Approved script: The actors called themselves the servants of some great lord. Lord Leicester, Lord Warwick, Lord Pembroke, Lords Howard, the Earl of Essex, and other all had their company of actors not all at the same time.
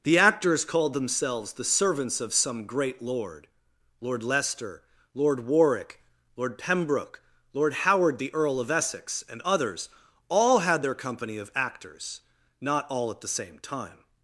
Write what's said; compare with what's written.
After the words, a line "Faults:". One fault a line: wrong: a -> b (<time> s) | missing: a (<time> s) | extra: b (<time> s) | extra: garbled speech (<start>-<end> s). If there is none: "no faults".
The actors called themselves the servants of some great lord. Lord Leicester, Lord Warwick, Lord Pembroke, Lord Howard, the Earl of Essex, and others all had their company of actors not all at the same time.
Faults:
wrong: Lords -> Lord (7.5 s)
wrong: other -> others (9.4 s)